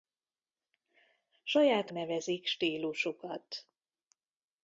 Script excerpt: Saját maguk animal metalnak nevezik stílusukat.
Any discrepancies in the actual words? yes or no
yes